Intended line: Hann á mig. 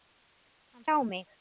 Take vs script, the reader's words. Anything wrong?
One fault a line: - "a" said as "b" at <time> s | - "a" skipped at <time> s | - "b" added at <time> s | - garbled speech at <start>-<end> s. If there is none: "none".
none